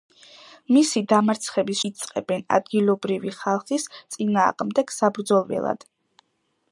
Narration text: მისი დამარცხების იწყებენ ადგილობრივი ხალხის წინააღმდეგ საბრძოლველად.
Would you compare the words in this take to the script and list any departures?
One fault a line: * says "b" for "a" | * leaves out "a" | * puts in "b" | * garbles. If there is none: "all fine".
all fine